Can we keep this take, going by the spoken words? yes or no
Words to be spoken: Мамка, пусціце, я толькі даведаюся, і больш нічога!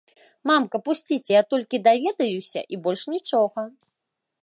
yes